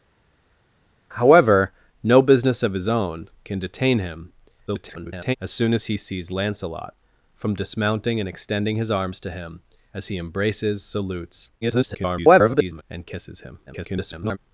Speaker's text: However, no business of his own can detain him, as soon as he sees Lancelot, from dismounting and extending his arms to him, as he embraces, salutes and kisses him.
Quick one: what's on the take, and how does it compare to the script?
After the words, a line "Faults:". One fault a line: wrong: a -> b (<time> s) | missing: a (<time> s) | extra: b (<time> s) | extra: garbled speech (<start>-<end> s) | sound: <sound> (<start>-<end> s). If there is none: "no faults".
However, no business of his own can detain him, [garbled] as soon as he sees Lancelot, from dismounting and extending his arms to him, as he embraces, salutes [garbled] and kisses him. [garbled]
Faults:
extra: garbled speech (4.7-5.4 s)
extra: garbled speech (11.6-12.8 s)
extra: garbled speech (13.7-14.4 s)